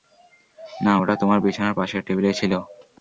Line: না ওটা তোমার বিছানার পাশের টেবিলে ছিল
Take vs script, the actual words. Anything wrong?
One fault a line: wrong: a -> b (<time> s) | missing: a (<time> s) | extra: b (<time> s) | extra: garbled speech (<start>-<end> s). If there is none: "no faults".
no faults